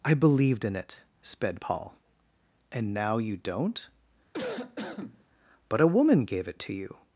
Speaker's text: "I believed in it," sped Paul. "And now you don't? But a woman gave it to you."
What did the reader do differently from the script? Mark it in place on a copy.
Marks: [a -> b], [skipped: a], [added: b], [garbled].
"I believed in it," sped Paul. "And now you don't? But a woman gave it to you."